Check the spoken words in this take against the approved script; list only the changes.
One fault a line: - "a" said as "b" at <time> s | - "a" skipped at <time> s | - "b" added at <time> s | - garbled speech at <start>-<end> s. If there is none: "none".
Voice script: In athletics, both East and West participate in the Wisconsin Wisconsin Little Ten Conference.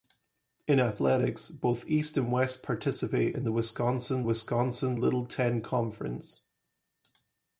none